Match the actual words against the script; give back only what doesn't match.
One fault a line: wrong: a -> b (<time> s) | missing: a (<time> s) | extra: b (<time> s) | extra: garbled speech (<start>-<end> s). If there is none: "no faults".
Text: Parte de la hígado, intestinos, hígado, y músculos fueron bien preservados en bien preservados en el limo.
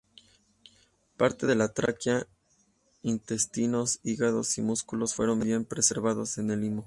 wrong: hígado -> tráquea (1.7 s)
missing: bien preservados en (6.5 s)